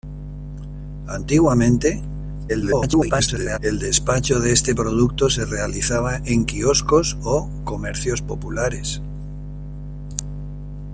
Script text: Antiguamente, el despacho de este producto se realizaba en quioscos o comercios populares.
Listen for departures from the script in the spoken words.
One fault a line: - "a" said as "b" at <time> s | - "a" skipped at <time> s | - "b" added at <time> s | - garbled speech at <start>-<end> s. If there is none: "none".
- garbled speech at 2.5-3.6 s